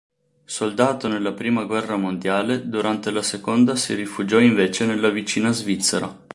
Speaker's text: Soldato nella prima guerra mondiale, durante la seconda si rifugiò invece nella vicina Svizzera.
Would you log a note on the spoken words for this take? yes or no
no